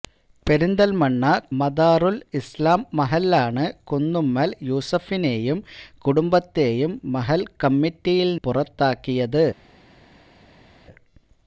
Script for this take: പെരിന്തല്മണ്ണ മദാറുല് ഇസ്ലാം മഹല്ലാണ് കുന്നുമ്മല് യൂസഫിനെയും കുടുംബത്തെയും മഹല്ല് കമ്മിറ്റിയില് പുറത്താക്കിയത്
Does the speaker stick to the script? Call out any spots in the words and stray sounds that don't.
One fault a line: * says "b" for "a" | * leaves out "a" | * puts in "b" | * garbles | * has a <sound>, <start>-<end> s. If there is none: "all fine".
all fine